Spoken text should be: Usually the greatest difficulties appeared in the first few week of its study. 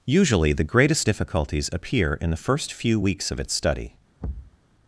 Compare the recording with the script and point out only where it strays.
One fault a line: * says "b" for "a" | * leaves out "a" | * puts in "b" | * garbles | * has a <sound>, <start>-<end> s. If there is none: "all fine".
* says "appear" for "appeared"
* says "weeks" for "week"
* has a thud, 4.2-4.6 s